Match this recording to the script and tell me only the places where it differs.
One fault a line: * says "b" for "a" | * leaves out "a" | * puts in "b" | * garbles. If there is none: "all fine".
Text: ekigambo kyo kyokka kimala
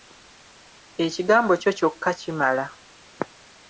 all fine